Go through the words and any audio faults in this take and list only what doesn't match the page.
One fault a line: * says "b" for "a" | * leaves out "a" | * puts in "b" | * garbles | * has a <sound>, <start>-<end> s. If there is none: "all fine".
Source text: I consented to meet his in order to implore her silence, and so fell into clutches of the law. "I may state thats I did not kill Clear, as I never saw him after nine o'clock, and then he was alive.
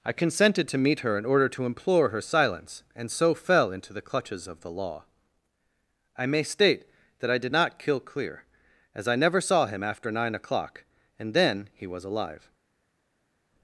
* says "her" for "his"
* puts in "the"
* says "that" for "thats"